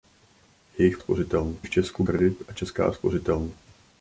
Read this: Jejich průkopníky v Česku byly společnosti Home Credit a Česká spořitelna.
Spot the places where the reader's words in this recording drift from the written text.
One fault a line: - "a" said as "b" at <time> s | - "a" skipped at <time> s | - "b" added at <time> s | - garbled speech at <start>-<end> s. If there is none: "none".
- "průkopníky" said as "spořitelna" at 1.0 s
- "byly společnosti Home" skipped at 2.0 s